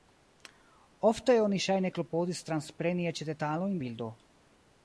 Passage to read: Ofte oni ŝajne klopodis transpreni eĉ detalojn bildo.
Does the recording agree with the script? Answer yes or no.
yes